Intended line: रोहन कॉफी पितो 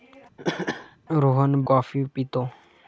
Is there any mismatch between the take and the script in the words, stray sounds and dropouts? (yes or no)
yes